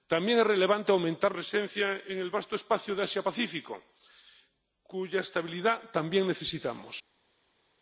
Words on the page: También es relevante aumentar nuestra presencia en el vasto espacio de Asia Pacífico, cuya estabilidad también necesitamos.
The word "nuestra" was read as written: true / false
false